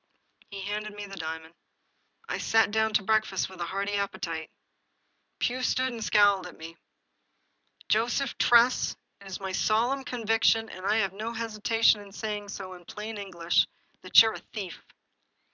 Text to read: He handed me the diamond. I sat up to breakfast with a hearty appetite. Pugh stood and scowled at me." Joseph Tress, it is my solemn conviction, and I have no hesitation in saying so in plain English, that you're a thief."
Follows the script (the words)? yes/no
no